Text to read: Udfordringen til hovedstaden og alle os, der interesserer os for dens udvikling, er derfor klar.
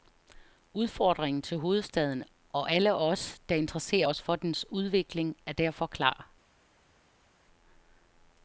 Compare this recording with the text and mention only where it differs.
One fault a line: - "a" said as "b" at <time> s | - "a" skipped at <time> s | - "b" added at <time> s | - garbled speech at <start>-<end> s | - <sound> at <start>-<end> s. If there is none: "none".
none